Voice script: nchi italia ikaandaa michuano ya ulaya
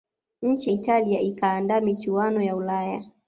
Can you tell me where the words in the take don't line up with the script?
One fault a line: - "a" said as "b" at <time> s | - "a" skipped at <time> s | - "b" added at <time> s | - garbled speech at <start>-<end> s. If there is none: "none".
none